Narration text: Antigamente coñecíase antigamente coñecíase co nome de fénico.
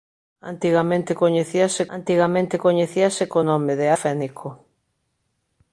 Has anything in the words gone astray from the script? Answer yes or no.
no